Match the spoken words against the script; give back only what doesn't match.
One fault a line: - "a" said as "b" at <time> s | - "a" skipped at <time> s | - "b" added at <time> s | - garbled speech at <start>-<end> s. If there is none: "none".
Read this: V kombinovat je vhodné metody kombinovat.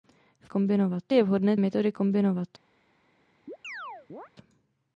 none